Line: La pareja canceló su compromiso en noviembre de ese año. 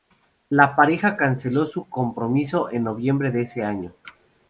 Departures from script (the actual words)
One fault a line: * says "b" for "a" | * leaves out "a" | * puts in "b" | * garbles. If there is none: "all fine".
all fine